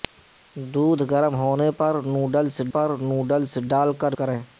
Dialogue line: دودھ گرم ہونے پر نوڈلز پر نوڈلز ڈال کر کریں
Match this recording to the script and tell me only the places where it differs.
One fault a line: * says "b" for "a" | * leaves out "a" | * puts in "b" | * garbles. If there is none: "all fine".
all fine